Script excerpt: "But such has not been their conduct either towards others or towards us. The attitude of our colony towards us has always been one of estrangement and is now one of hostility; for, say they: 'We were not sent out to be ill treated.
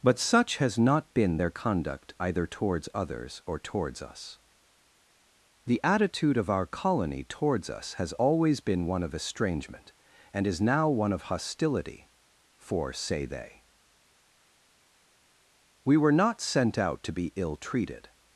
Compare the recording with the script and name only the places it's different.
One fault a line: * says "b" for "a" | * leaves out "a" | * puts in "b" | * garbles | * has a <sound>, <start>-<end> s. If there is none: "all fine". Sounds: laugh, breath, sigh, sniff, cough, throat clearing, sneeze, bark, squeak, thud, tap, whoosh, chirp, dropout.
all fine